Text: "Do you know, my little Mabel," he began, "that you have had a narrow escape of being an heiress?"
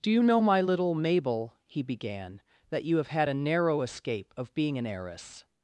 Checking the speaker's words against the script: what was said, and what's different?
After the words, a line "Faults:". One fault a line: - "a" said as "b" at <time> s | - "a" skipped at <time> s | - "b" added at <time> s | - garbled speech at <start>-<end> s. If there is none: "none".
"Do you know, my little Mabel," he began, "that you have had a narrow escape of being an heiress?"
Faults:
none